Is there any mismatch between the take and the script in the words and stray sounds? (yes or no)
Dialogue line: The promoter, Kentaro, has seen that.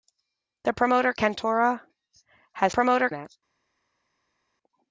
yes